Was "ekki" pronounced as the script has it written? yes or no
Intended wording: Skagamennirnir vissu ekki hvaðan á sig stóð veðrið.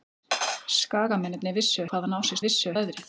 no